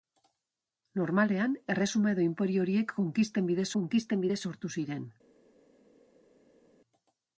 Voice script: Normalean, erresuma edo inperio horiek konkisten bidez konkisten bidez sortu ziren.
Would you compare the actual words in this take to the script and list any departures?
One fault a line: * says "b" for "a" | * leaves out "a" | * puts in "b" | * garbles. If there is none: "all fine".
all fine